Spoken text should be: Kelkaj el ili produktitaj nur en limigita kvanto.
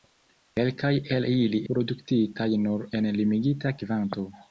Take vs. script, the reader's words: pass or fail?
pass